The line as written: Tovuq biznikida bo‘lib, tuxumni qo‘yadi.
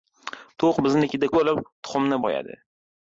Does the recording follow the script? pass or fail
pass